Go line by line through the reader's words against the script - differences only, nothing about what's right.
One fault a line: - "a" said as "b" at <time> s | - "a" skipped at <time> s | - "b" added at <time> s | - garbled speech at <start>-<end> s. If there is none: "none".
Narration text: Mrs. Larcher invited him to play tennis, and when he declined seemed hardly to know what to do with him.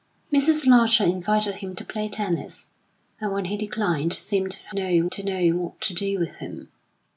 - "hardly" said as "know" at 4.7 s